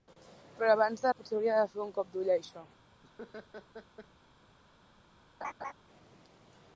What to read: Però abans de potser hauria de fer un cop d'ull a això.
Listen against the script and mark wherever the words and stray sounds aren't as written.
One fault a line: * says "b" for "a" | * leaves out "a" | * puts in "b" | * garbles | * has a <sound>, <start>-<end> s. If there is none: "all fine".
* has a laugh, 3.0-4.1 s
* has a laugh, 5.4-5.7 s